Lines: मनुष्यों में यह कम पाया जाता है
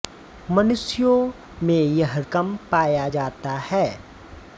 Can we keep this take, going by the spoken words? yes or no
yes